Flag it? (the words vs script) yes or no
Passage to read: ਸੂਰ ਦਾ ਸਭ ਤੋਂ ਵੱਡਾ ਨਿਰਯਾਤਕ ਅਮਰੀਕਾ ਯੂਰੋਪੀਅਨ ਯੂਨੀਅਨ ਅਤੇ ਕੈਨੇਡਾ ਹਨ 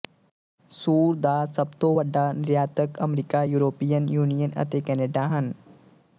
no